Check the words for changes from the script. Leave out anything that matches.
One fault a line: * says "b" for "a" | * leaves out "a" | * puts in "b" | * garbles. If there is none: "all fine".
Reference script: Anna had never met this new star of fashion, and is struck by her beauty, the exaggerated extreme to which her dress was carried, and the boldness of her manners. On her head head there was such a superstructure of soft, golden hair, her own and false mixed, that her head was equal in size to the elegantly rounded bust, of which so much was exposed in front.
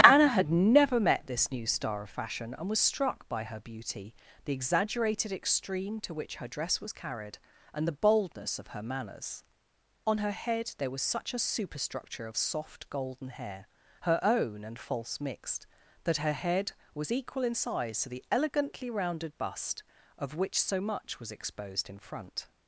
* says "was" for "is"
* leaves out "head"